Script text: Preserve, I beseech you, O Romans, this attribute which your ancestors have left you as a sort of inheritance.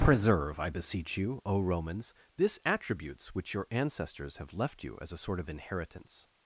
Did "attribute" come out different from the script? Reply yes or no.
yes